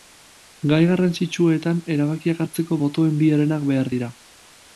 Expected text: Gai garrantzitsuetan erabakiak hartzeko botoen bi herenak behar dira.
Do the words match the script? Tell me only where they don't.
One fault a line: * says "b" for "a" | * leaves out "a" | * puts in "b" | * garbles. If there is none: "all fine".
all fine